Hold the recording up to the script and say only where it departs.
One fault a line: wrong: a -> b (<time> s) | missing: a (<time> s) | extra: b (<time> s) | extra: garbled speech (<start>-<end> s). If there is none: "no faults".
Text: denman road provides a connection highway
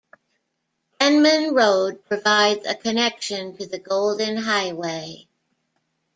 extra: to the golden (3.6 s)